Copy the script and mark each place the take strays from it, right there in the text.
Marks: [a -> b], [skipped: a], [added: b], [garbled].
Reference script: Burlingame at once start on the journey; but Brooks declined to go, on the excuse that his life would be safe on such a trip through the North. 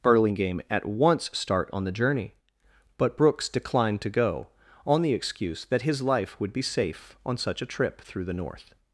Burlingame at once start on the journey; but Brooks declined to go, on the excuse that his life would be safe on such a trip through the North.